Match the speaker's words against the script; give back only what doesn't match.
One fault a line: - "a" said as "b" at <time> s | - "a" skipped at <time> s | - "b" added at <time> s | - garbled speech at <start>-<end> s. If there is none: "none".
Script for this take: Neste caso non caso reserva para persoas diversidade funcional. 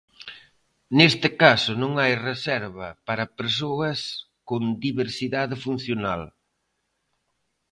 - "caso" said as "hai" at 2.0 s
- "con" added at 4.5 s